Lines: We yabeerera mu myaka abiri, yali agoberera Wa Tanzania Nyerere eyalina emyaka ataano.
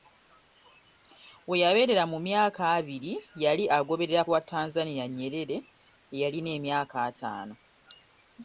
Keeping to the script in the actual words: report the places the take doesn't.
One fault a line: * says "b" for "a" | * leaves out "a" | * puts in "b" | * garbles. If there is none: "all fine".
all fine